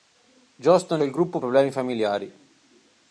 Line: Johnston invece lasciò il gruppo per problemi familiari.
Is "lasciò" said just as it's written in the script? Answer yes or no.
no